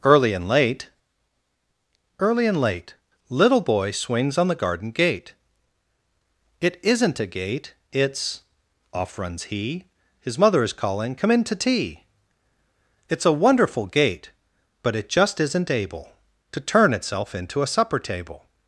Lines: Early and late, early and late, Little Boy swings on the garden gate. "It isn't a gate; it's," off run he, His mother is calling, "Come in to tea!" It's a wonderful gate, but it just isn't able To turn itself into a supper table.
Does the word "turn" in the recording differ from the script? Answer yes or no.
no